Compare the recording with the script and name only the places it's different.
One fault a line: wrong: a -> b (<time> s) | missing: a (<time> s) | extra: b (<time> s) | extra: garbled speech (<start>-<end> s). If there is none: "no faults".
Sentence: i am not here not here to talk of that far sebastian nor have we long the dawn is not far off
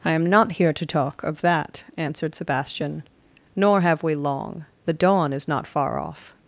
missing: not here (0.7 s)
wrong: far -> answered (1.9 s)